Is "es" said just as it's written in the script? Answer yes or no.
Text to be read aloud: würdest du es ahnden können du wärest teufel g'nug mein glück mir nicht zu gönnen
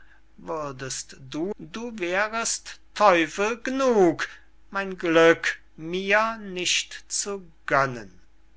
no